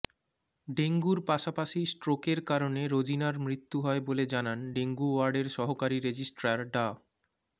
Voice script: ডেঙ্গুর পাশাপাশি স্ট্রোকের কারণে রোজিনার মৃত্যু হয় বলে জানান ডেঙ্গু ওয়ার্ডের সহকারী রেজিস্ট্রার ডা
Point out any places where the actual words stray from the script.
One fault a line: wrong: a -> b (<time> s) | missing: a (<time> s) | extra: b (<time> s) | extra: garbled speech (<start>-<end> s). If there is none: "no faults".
no faults